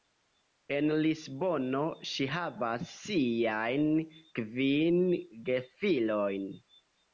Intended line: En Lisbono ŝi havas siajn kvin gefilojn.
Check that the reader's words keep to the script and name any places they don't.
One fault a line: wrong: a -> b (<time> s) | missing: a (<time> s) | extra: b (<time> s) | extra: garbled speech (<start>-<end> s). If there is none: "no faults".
no faults